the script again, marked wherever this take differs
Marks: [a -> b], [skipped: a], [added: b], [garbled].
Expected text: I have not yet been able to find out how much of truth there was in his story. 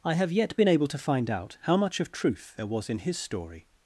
I have [skipped: not] yet been able to find out how much of truth there was in his story.